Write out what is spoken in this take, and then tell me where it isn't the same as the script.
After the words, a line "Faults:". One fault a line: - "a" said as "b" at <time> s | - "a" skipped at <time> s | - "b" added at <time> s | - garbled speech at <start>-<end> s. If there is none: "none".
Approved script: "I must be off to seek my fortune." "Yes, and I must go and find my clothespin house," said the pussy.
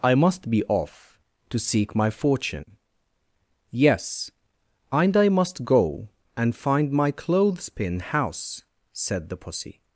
"I must be off to seek my fortune." "Yes, and I must go and find my clothespin house," said the pussy.
Faults:
none